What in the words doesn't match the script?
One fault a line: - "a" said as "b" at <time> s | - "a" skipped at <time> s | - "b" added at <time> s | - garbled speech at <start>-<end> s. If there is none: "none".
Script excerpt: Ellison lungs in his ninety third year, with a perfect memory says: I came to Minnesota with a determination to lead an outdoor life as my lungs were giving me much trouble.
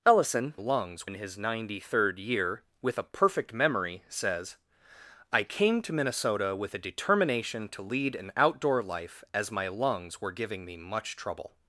none